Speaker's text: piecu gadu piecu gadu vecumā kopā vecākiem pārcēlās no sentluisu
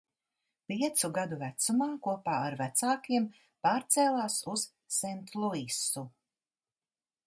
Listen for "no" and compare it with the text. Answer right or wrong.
wrong